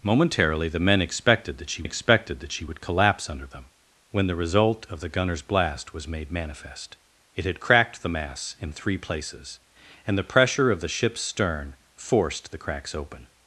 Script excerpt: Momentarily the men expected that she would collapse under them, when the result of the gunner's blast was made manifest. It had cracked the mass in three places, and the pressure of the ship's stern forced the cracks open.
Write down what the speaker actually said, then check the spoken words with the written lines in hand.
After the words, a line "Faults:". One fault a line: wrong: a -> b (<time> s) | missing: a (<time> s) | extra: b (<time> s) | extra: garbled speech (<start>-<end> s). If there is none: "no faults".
Momentarily the men expected that she expected that she would collapse under them, when the result of the gunner's blast was made manifest. It had cracked the mass in three places, and the pressure of the ship's stern forced the cracks open.
Faults:
extra: expected that she (1.8 s)